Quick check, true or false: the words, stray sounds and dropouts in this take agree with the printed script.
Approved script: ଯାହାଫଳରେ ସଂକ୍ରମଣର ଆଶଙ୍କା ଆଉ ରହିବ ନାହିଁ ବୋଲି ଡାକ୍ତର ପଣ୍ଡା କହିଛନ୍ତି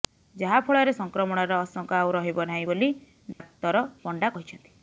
false